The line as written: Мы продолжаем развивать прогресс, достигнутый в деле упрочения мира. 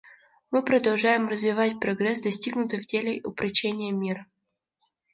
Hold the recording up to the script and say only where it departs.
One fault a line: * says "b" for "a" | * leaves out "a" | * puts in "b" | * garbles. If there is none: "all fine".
all fine